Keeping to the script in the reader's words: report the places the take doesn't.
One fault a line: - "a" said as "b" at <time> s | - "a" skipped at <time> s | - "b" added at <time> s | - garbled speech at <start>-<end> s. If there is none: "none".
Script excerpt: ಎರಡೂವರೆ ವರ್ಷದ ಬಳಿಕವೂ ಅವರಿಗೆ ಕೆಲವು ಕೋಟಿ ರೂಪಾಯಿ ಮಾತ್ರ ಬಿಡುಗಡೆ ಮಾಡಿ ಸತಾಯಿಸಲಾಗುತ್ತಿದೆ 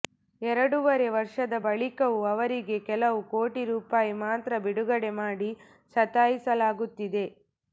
none